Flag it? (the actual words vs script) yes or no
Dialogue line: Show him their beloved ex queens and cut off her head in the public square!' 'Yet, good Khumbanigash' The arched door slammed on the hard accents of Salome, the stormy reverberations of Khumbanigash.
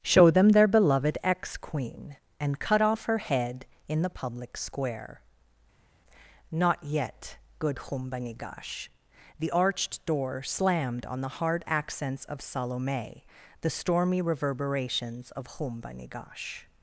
yes